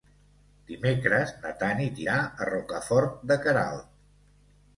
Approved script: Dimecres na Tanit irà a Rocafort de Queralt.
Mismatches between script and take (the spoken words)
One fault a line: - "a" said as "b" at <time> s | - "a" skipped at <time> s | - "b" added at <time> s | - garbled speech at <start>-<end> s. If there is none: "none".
none